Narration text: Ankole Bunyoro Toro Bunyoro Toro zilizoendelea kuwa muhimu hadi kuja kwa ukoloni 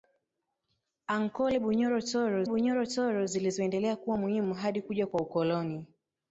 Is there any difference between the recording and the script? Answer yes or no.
no